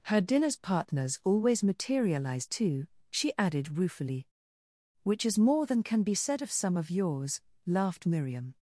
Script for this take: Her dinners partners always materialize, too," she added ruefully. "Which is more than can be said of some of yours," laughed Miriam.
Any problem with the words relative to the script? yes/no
no